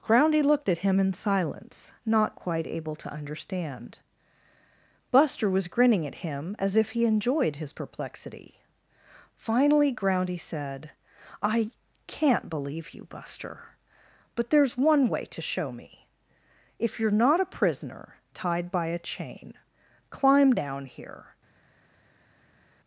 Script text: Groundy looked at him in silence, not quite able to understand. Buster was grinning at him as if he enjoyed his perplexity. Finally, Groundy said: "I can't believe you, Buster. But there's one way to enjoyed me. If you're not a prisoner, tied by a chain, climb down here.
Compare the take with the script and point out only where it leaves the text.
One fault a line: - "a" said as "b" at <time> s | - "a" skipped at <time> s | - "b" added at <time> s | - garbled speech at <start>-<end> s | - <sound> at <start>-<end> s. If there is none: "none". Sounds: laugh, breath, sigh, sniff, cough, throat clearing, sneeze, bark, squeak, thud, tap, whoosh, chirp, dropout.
- "enjoyed" said as "show" at 15.4 s